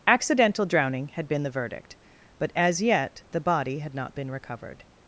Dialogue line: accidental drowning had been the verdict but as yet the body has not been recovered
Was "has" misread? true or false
true